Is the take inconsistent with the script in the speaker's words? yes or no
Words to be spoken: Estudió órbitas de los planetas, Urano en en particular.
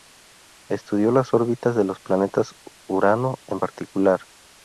yes